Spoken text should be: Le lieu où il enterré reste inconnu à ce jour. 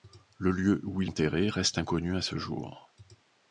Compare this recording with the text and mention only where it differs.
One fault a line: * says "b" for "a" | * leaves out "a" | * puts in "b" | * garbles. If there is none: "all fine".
all fine